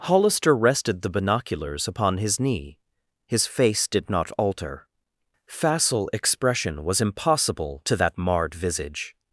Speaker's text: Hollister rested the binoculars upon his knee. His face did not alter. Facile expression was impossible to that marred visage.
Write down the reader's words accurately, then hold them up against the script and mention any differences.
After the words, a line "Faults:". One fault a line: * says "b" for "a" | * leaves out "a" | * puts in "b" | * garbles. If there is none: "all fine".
Hollister rested the binoculars upon his knee. His face did not alter. Facile expression was impossible to that marred visage.
Faults:
all fine